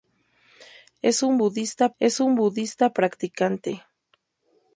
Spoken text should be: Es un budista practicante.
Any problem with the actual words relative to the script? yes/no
yes